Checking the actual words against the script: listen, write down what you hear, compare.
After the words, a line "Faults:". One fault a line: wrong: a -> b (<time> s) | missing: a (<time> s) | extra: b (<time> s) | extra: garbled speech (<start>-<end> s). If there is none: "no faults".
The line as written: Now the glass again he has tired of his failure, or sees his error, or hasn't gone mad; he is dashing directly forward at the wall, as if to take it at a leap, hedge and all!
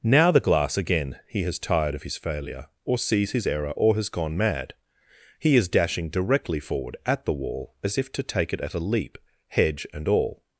Now the glass again he has tired of his failure, or sees his error, or has gone mad; he is dashing directly forward at the wall, as if to take it at a leap, hedge and all!
Faults:
wrong: hasn't -> has (4.0 s)